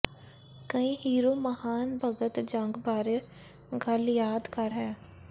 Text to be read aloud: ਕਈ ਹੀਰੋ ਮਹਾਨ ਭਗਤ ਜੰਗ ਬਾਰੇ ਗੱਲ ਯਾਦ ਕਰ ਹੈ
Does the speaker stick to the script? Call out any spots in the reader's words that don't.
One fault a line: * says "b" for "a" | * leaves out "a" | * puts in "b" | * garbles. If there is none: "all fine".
all fine